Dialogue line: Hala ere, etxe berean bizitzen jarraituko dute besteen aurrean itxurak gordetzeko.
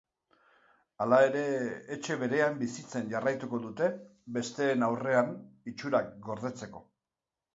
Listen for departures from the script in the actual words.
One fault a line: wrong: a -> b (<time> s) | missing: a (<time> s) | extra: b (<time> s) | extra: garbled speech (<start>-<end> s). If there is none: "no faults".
no faults